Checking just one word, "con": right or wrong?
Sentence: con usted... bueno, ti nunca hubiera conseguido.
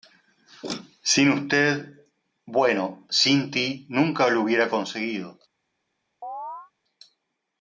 wrong